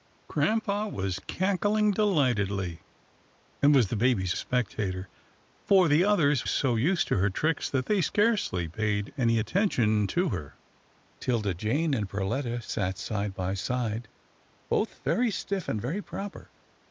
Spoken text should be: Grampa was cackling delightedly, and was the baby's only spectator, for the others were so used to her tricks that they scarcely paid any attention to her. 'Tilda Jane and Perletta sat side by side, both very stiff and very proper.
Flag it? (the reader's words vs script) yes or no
yes